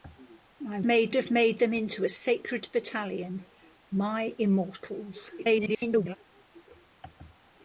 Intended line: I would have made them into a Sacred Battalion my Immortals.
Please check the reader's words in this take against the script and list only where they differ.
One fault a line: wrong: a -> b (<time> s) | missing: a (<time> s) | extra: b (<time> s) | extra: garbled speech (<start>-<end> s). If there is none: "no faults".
wrong: would -> made (0.8 s)
extra: garbled speech (5.4-6.2 s)